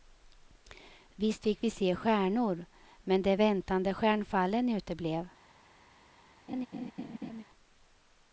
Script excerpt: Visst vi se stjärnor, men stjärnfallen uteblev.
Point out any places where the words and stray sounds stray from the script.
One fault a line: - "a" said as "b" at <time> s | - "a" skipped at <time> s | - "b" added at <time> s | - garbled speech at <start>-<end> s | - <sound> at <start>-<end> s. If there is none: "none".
- "fick" added at 1.4 s
- "de väntade" added at 3.2 s
- laugh at 6.5-7.4 s